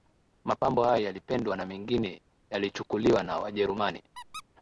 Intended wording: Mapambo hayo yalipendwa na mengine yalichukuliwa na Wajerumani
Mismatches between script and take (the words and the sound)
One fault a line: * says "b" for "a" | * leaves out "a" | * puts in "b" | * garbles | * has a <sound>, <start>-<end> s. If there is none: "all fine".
* has a squeak, 4.1-4.4 s